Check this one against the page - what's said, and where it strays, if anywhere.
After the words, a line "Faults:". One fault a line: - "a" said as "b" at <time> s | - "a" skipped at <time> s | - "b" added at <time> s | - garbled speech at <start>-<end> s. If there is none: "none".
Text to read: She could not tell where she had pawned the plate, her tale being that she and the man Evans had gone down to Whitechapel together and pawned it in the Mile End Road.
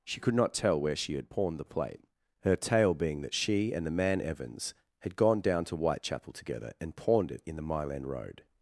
She could not tell where she had pawned the plate, her tale being that she and the man Evans had gone down to Whitechapel together and pawned it in the Mile End Road.
Faults:
none